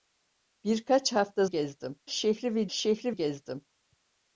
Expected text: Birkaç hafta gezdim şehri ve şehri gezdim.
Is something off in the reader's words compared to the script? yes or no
no